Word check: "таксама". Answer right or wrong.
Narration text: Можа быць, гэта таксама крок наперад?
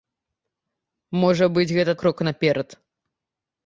wrong